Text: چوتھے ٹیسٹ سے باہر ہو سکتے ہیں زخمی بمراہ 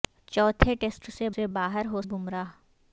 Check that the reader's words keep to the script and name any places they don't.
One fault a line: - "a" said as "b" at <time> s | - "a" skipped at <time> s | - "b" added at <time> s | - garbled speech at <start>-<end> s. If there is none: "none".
- "سے" added at 1.3 s
- "سکتے ہیں زخمی" skipped at 2.0 s